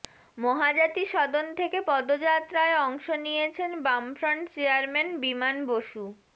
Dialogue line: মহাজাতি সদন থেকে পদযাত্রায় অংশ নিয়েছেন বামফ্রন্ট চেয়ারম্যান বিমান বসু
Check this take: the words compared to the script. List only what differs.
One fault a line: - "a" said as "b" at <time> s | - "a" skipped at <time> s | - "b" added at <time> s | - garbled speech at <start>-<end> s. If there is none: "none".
none